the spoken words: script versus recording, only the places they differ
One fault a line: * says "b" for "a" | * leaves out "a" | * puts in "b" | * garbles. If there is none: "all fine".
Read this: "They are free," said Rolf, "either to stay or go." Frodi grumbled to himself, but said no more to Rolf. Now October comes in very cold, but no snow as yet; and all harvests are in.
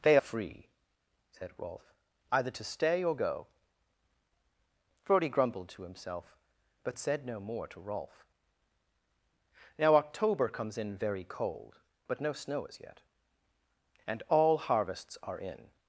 * leaves out "are"